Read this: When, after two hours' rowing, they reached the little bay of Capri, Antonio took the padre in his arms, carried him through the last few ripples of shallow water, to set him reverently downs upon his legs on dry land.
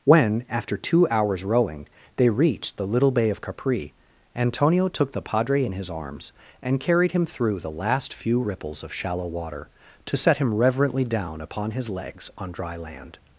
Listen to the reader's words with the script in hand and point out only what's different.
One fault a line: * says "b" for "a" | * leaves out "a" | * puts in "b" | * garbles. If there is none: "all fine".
* puts in "and"
* says "down" for "downs"